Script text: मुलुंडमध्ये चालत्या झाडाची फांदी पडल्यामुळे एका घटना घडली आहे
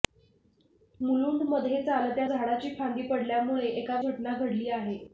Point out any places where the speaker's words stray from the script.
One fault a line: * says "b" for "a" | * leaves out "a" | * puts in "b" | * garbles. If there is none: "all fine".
all fine